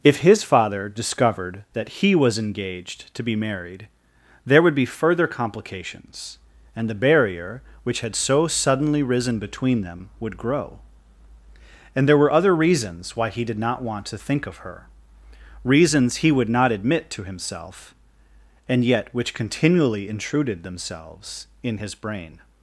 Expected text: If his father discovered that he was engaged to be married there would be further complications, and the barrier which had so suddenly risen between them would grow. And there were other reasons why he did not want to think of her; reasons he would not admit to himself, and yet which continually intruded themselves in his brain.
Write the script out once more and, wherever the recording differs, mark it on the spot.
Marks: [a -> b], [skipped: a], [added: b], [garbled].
If his father discovered that he was engaged to be married there would be further complications, and the barrier which had so suddenly risen between them would grow. And there were other reasons why he did not want to think of her; reasons he would not admit to himself, and yet which continually intruded themselves in his brain.